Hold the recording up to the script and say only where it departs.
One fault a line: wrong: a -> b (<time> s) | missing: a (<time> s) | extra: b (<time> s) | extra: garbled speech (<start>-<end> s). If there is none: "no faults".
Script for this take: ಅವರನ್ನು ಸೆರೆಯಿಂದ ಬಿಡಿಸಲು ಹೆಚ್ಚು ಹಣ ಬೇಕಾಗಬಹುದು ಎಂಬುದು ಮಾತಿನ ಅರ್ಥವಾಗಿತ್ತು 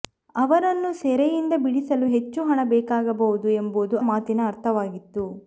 no faults